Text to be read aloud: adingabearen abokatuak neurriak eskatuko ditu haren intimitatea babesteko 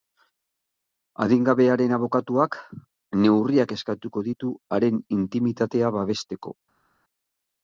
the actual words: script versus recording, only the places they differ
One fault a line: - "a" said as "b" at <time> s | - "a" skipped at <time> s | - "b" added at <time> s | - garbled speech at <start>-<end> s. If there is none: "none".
none